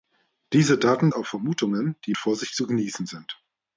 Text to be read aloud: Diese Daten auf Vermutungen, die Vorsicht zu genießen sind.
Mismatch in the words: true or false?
false